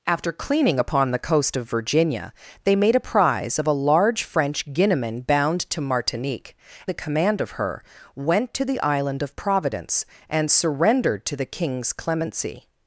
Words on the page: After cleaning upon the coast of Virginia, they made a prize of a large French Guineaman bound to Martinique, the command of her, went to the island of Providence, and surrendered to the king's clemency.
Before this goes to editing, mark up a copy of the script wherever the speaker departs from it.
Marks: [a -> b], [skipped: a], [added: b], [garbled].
After cleaning upon the coast of Virginia, they made a prize of a large French Guineaman bound to Martinique, the command of her, went to the island of Providence, and surrendered to the king's clemency.